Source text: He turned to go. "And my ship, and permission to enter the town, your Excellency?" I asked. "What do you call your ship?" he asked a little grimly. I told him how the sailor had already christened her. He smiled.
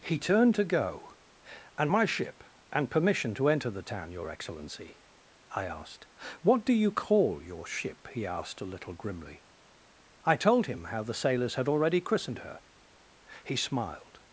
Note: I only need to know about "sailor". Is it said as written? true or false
false